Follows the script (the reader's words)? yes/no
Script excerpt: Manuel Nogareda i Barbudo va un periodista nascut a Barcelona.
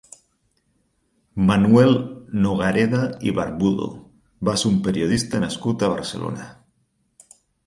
no